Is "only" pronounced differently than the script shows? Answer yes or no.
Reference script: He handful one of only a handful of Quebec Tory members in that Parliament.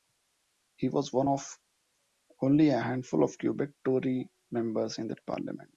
no